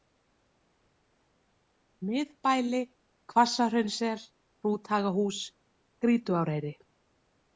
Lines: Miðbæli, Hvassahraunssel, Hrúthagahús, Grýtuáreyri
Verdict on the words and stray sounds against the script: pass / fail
pass